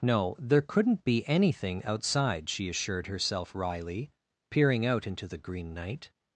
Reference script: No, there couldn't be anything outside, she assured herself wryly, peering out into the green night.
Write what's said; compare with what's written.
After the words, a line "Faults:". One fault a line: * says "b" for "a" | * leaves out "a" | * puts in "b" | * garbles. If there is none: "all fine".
No, there couldn't be anything outside, she assured herself wryly, peering out into the green night.
Faults:
all fine